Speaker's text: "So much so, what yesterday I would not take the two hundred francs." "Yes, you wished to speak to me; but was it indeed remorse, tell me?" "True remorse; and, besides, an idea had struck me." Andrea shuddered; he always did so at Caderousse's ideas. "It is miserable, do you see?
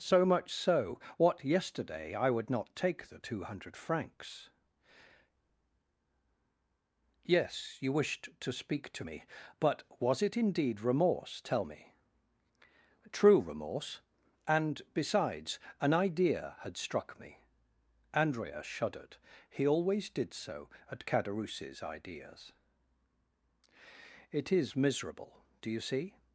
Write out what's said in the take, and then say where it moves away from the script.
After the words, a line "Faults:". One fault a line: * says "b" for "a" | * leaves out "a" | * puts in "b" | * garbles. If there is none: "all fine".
"So much so, what yesterday I would not take the two hundred francs." "Yes, you wished to speak to me; but was it indeed remorse, tell me?" "True remorse; and, besides, an idea had struck me." Andrea shuddered; he always did so at Caderousse's ideas. "It is miserable, do you see?
Faults:
all fine